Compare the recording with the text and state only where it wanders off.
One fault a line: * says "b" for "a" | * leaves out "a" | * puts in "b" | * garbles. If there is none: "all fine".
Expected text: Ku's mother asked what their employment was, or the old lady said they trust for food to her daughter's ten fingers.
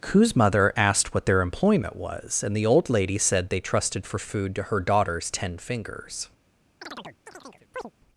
* says "and" for "or"
* says "trusted" for "trust"